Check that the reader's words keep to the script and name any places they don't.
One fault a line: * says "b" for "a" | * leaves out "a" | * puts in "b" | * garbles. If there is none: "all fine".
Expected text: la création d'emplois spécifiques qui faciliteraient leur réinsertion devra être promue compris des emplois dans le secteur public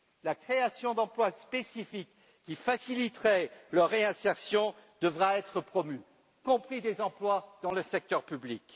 all fine